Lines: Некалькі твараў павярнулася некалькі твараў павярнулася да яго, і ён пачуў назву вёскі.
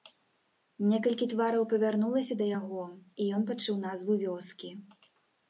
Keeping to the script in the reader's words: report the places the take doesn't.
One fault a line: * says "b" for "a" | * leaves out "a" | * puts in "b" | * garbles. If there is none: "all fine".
* leaves out "некалькі твараў павярнулася"